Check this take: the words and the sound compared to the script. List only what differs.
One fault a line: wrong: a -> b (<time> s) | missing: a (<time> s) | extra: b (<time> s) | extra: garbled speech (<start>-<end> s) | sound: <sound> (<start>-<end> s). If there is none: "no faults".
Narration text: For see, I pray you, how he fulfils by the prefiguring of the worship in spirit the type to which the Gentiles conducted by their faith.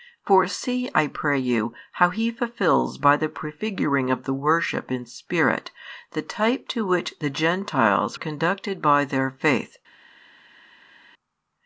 no faults